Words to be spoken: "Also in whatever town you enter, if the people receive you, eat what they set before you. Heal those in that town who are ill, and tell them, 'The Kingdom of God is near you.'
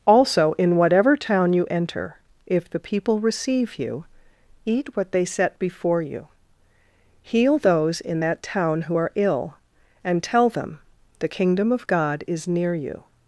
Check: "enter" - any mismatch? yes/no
no